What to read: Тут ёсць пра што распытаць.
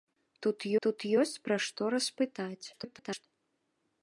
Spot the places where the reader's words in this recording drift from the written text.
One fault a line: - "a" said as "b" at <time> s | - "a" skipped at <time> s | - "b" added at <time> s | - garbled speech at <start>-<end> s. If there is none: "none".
- "тут" added at 0.8 s
- garbled speech at 2.7-3.3 s